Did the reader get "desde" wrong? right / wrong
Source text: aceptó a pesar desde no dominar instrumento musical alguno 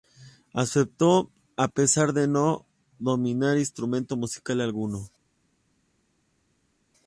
wrong